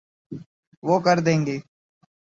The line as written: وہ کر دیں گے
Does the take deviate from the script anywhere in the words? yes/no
no